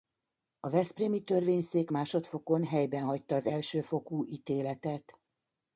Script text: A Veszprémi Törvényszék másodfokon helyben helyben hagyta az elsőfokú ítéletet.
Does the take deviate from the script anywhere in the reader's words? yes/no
yes